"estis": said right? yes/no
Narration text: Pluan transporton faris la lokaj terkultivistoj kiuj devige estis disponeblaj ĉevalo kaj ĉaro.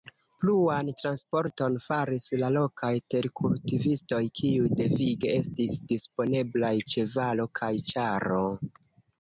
yes